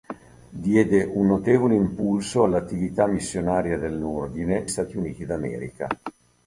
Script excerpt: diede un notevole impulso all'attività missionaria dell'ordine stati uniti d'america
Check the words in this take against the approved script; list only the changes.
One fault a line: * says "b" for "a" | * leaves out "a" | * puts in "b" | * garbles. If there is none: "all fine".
all fine